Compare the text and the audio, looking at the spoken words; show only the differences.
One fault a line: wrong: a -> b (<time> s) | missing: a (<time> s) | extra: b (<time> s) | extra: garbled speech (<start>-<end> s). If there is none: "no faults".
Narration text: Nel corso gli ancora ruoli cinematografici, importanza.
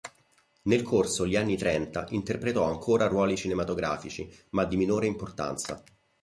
extra: anni trenta interpretò (1.4 s)
extra: ma di minore (4.5 s)